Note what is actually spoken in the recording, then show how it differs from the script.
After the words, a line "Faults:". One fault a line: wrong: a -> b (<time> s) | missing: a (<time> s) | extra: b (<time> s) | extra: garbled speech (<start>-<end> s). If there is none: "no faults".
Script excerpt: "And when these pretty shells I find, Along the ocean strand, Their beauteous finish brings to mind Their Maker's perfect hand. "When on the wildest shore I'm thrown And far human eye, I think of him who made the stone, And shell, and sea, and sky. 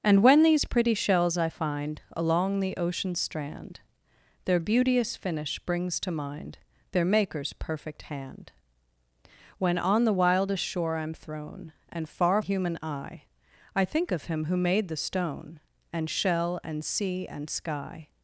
"And when these pretty shells I find, Along the ocean strand, Their beauteous finish brings to mind Their Maker's perfect hand. "When on the wildest shore I'm thrown And far human eye, I think of him who made the stone, And shell, and sea, and sky.
Faults:
no faults